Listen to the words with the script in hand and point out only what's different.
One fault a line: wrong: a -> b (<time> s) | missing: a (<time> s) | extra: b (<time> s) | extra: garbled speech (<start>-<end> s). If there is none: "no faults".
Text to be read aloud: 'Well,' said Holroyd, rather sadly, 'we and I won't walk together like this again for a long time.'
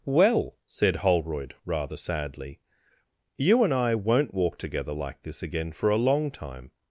wrong: we -> you (3.4 s)